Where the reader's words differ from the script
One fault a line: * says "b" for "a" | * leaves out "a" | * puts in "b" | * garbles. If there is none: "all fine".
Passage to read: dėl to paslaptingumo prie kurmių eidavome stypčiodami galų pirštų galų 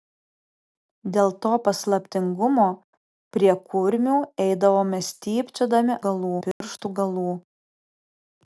all fine